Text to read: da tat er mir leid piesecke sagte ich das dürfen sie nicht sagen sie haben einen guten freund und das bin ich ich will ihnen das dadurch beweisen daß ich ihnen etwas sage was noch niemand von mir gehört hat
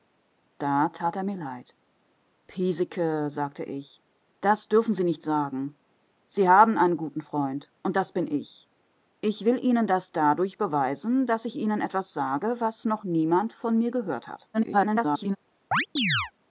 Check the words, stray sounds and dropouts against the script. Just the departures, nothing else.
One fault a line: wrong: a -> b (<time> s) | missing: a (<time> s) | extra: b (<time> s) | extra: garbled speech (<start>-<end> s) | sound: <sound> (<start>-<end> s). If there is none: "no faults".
extra: garbled speech (14.5-15.4 s)
sound: chirp (15.7-16.3 s)